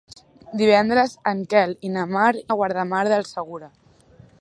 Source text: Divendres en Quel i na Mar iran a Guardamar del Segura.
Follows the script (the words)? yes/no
no